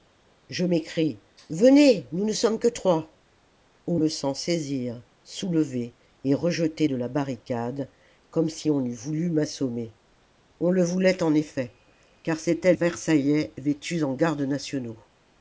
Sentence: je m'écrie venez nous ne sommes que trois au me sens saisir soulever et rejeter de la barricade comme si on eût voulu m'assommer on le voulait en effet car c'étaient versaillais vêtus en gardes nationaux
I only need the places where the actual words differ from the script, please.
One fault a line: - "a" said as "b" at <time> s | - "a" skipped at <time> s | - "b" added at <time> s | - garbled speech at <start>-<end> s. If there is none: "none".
none